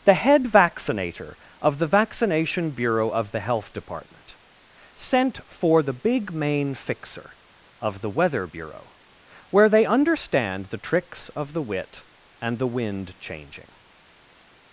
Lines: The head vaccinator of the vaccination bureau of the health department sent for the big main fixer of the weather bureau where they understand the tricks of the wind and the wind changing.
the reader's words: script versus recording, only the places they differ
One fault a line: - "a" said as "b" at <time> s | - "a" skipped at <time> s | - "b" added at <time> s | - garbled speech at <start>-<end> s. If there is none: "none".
- "wind" said as "wit" at 11.6 s